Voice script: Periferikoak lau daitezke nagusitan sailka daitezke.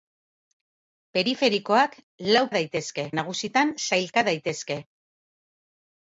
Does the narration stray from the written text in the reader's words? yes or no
no